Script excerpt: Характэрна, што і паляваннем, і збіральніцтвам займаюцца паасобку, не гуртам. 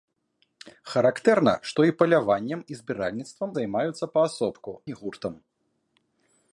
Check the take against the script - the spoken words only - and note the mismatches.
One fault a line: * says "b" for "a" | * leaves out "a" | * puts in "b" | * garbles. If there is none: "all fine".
all fine